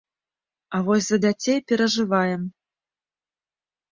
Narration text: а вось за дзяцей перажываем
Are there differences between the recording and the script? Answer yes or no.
no